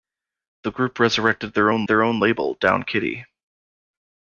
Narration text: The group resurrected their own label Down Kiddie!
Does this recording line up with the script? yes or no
no